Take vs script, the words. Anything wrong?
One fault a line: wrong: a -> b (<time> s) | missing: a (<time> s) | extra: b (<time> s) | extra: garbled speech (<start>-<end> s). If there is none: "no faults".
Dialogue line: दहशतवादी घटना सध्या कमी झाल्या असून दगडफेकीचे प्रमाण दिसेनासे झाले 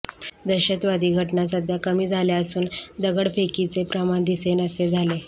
no faults